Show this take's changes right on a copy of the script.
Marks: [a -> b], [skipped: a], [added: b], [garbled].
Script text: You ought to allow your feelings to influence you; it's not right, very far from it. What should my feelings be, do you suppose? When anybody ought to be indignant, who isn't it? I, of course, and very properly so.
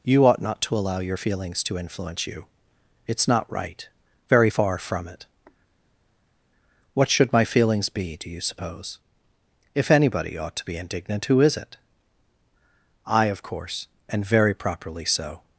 You ought [added: not] to allow your feelings to influence you; it's not right, very far from it. What should my feelings be, do you suppose? [When -> If] anybody ought to be indignant, who [isn't -> is] it? I, of course, and very properly so.